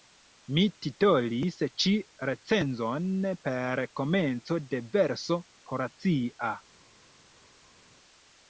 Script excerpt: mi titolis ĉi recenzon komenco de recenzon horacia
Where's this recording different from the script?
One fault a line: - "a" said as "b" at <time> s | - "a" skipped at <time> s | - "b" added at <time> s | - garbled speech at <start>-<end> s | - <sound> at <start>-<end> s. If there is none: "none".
- "per" added at 3.5 s
- "recenzon" said as "verso" at 5.0 s